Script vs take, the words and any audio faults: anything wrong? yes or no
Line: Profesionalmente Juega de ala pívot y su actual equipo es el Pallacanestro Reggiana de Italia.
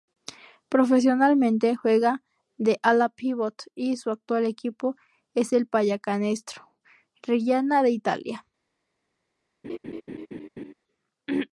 yes